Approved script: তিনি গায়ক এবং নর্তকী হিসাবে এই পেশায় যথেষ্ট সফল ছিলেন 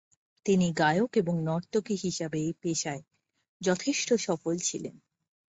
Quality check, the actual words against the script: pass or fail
pass